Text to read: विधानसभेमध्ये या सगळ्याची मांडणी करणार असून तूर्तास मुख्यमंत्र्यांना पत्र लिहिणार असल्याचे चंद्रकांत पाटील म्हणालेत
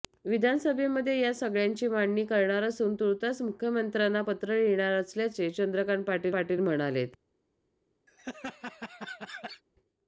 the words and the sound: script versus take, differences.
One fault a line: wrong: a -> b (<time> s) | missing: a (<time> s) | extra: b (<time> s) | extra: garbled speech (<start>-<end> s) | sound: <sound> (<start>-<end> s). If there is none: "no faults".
extra: पाटील (6.3 s)
sound: laugh (8.1-9.6 s)